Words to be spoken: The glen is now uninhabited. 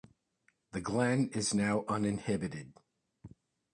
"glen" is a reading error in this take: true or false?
false